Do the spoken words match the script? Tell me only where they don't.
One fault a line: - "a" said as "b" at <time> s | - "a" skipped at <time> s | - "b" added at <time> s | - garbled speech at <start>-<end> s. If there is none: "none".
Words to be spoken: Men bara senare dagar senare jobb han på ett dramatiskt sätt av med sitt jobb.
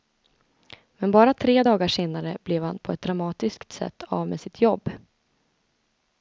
- "senare" said as "tre" at 1.3 s
- "jobb" said as "blev" at 2.4 s